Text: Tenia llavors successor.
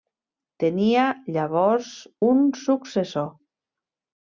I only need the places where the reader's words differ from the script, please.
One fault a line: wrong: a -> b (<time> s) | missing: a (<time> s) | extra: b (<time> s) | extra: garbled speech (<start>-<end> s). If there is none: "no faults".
extra: un (2.3 s)